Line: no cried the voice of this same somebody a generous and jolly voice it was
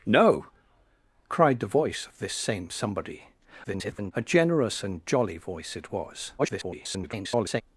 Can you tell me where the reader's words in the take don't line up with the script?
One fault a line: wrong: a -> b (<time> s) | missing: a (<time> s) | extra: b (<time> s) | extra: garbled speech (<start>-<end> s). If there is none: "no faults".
extra: garbled speech (3.6-4.1 s)
extra: garbled speech (6.4-7.6 s)